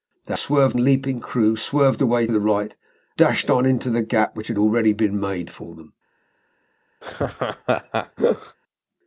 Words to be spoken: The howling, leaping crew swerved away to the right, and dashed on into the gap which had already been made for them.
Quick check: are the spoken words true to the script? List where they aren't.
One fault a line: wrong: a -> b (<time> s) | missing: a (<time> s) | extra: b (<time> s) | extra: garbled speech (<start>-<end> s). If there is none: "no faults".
wrong: howling -> swerved (0.3 s)
missing: to (2.2 s)
missing: and (2.7 s)